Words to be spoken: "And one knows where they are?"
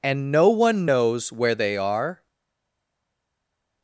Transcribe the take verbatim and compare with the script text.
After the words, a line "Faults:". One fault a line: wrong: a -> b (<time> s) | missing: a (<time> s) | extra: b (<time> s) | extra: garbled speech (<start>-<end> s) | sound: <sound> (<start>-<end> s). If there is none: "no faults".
"And no one knows where they are?"
Faults:
extra: no (0.3 s)